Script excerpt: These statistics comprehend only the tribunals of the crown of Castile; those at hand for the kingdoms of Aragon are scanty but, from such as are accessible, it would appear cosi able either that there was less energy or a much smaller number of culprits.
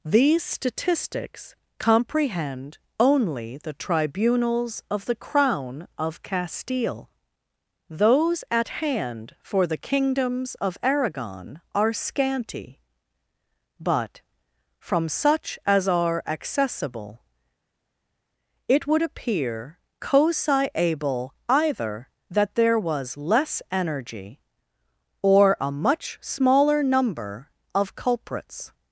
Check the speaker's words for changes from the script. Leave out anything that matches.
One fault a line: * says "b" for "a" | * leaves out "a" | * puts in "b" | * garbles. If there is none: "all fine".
all fine